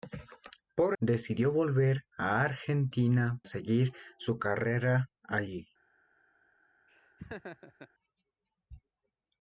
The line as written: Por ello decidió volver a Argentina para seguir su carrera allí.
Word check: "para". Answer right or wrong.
wrong